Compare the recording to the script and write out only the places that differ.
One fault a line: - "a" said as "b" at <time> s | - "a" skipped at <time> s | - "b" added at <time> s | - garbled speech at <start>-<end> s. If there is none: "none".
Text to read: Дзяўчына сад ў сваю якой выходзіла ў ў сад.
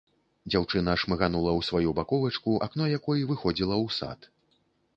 - "сад" said as "шмыганула" at 1.0 s
- "баковачку акно" added at 2.0 s
- "ў" skipped at 4.0 s